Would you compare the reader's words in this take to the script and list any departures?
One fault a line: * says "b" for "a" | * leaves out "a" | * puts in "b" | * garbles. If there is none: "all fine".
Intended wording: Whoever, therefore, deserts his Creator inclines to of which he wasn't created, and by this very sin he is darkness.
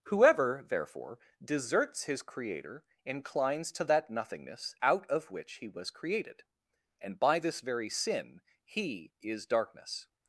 * puts in "that nothingness out"
* says "was" for "wasn't"